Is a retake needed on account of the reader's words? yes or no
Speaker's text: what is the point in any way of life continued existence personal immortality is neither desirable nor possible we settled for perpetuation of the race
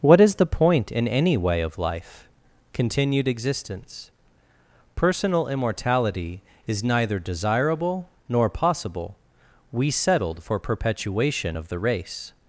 no